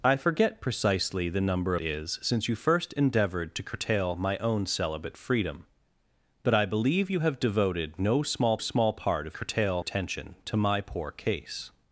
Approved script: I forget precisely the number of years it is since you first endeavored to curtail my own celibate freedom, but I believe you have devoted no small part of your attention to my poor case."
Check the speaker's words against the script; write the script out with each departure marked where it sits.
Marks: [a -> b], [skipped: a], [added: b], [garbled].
I forget precisely the number [skipped: of years it] is since you first endeavored to curtail my own celibate freedom, but I believe you have devoted no small [added: small] part of [your -> curtail] attention to my poor case."